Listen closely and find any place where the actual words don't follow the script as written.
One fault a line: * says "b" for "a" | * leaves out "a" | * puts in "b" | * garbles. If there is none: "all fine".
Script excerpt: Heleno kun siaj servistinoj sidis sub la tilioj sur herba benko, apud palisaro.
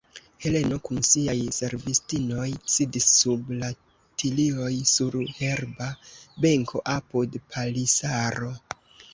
all fine